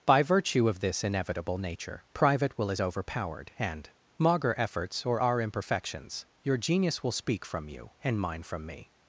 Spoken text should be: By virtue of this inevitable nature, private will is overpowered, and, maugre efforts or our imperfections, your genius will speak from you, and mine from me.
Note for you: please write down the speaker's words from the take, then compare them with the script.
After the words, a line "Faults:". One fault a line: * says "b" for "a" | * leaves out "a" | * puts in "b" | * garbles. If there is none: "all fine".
By virtue of this inevitable nature, private will is overpowered, and, maugre efforts or our imperfections, your genius will speak from you, and mine from me.
Faults:
all fine